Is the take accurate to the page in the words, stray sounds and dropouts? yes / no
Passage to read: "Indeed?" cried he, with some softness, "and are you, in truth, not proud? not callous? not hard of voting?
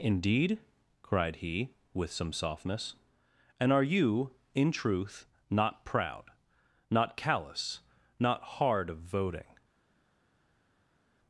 yes